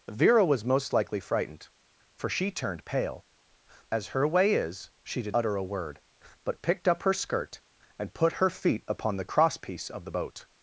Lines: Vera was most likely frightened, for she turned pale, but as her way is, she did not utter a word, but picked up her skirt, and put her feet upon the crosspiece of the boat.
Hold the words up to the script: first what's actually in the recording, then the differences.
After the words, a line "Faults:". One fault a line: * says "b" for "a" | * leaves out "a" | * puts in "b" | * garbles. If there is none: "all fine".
Vera was most likely frightened, for she turned pale, as her way is, she did utter a word, but picked up her skirt, and put her feet upon the crosspiece of the boat.
Faults:
* leaves out "but"
* leaves out "not"